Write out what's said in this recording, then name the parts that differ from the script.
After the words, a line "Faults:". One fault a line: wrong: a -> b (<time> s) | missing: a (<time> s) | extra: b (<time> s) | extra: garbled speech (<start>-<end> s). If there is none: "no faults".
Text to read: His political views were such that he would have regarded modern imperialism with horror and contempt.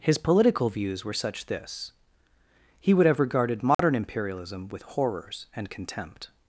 His political views were such this he would have regarded modern imperialism with horrors and contempt.
Faults:
wrong: that -> this (1.4 s)
wrong: horror -> horrors (4.8 s)